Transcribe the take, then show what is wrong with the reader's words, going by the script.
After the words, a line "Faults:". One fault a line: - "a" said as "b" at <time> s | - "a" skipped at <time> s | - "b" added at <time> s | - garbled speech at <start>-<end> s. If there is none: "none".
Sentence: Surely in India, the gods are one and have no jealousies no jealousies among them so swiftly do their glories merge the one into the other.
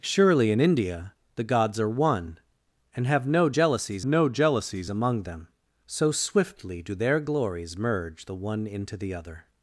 Surely in India, the gods are one and have no jealousies no jealousies among them so swiftly do their glories merge the one into the other.
Faults:
none